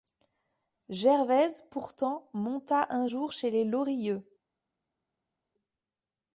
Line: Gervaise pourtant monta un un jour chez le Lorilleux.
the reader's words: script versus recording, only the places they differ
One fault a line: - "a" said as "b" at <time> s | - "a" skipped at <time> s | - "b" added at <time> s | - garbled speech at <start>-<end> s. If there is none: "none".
- "un" skipped at 3.1 s
- "le" said as "les" at 3.5 s